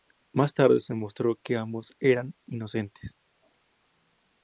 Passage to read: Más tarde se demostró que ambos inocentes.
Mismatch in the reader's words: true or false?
true